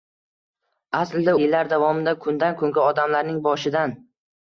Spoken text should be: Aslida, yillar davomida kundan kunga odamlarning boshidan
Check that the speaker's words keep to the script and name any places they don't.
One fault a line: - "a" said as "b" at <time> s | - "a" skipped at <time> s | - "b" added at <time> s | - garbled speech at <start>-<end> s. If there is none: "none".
none